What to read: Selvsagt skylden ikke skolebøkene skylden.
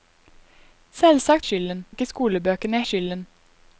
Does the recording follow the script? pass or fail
pass